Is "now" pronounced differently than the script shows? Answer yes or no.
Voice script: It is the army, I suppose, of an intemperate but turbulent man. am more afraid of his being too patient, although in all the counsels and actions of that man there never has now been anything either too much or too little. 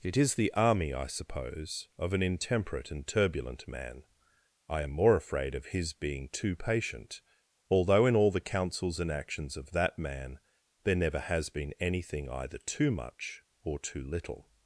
yes